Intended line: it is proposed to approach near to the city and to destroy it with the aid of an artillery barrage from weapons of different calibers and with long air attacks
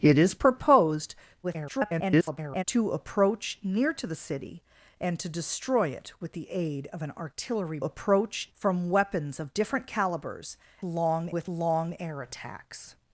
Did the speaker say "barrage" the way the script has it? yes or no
no